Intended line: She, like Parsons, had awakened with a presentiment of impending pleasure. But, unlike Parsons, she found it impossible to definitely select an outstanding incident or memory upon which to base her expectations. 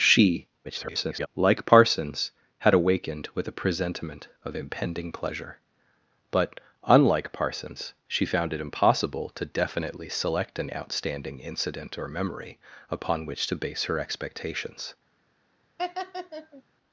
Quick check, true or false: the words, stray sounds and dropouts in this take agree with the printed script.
false